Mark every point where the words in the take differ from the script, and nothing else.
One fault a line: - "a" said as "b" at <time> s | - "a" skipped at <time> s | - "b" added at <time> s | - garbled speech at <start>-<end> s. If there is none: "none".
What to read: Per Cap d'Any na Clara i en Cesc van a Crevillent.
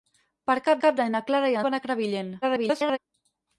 - "Cap" added at 0.8 s
- "en Cesc" skipped at 1.6 s
- garbled speech at 2.4-3.0 s